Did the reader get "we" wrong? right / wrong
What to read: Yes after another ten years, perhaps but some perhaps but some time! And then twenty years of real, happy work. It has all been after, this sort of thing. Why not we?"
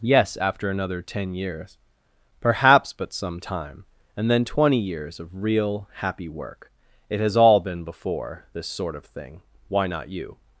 wrong